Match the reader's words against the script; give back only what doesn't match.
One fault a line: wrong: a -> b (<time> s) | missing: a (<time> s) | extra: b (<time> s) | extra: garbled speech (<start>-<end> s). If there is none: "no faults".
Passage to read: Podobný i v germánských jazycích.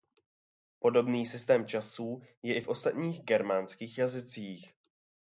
extra: systém časů je (1.2 s)
extra: ostatních (2.7 s)